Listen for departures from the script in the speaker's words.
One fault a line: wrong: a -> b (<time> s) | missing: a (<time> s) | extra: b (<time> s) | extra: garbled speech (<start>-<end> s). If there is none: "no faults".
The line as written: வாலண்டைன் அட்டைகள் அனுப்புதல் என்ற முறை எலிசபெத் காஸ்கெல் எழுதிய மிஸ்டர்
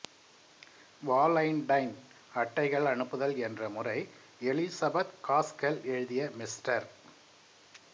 no faults